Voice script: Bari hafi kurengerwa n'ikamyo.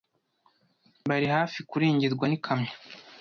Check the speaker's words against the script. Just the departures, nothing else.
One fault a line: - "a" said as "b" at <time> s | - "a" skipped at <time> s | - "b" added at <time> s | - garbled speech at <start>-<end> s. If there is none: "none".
none